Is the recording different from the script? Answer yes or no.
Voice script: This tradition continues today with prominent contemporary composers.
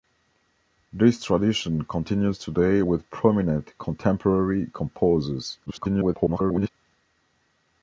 yes